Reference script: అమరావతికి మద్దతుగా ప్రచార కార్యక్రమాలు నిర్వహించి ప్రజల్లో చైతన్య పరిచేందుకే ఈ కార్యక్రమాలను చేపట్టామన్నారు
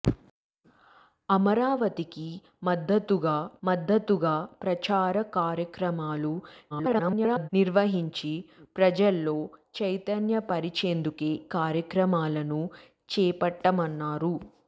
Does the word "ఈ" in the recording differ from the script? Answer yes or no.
yes